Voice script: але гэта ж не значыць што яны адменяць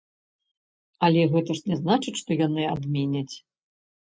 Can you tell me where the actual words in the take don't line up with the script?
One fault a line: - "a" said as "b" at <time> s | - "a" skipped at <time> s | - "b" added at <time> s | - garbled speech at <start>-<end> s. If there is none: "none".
none